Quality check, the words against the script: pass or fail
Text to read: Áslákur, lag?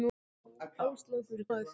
pass